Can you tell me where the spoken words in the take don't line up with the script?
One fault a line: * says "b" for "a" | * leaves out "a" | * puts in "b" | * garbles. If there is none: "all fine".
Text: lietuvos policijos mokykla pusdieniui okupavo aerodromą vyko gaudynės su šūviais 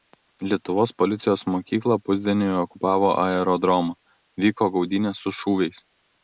all fine